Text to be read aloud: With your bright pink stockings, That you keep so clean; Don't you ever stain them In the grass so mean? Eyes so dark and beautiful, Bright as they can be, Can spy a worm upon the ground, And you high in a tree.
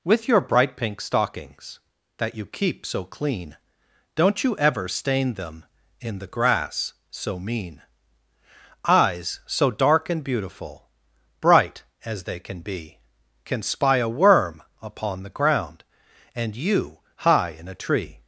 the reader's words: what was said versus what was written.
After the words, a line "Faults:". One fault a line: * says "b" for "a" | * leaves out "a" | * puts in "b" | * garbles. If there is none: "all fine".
With your bright pink stockings, That you keep so clean; Don't you ever stain them In the grass so mean? Eyes so dark and beautiful, Bright as they can be, Can spy a worm upon the ground, And you high in a tree.
Faults:
all fine